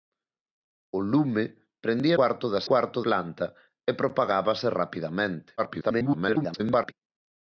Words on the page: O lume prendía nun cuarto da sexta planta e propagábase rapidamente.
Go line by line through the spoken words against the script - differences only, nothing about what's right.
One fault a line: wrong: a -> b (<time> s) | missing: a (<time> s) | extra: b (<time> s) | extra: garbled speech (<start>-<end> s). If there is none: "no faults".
missing: nun (2.2 s)
wrong: sexta -> cuarto (2.7 s)
extra: garbled speech (5.6-6.9 s)